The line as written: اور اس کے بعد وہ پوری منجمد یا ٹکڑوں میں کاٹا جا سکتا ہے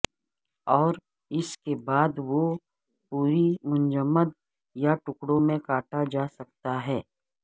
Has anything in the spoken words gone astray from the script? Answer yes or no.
no